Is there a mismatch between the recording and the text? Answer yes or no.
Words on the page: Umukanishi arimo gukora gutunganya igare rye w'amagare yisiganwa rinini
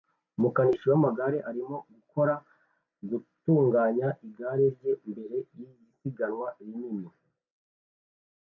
yes